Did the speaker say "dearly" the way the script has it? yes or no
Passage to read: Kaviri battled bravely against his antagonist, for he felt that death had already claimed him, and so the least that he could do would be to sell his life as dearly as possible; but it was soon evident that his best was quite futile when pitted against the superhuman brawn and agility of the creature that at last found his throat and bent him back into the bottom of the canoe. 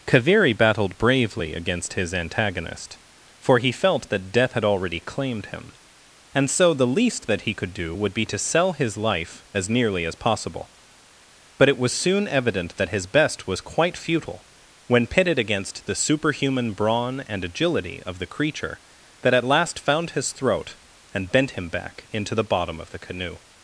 no